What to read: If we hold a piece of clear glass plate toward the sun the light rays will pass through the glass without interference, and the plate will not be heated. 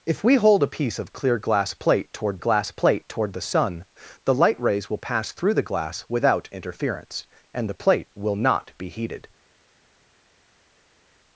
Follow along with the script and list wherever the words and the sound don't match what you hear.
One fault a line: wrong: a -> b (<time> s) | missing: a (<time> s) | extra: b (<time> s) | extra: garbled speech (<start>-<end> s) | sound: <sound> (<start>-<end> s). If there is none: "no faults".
extra: glass plate toward (2.4 s)